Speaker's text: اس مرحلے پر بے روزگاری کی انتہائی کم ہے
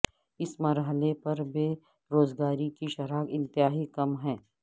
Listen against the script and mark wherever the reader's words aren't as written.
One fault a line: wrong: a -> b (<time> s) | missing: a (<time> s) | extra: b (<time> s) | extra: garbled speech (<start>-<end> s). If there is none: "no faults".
extra: شرح (2.9 s)